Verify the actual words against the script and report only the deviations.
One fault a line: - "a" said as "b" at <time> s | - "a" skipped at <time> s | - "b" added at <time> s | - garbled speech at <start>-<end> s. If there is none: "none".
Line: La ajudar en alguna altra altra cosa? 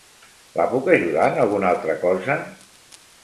- "puc" added at 0.7 s
- "altra" skipped at 2.0 s